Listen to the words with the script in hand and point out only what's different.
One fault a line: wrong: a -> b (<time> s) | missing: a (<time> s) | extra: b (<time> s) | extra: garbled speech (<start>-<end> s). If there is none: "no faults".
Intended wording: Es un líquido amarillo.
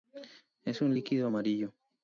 no faults